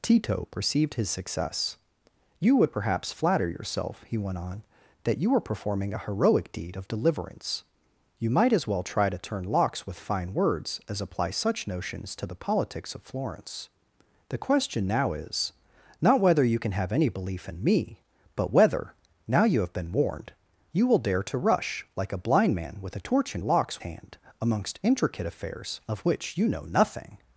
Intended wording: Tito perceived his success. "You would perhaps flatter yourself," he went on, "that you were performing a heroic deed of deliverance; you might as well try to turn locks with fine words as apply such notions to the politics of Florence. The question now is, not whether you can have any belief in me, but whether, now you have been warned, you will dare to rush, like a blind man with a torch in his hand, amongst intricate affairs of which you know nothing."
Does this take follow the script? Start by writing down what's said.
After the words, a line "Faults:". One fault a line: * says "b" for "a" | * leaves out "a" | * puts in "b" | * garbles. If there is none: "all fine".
Tito perceived his success. "You would perhaps flatter yourself," he went on, "that you were performing a heroic deed of deliverance; you might as well try to turn locks with fine words as apply such notions to the politics of Florence. The question now is, not whether you can have any belief in me, but whether, now you have been warned, you will dare to rush, like a blind man with a torch in locks hand, amongst intricate affairs of which you know nothing."
Faults:
* says "locks" for "his"